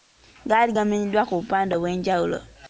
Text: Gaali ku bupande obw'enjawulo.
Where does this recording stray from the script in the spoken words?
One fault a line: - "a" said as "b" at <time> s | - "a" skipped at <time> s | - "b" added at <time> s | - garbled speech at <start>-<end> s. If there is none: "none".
- "gamenyeddwa" added at 0.8 s